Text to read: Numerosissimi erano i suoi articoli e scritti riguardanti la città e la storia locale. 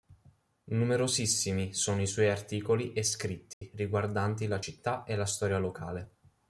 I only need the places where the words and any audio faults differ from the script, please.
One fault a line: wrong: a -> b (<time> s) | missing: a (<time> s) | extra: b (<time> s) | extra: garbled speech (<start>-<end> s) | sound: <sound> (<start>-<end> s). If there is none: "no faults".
wrong: erano -> sono (1.8 s)
sound: dropout (3.5-3.6 s)